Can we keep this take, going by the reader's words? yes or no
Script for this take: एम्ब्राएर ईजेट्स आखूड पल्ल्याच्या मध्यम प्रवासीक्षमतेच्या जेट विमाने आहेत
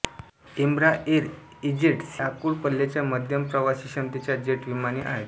yes